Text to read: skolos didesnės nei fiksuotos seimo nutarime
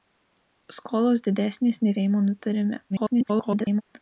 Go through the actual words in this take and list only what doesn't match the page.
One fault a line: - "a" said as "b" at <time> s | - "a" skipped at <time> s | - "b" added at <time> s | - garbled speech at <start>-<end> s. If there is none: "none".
- "fiksuotos" skipped at 1.9 s
- garbled speech at 2.9-3.8 s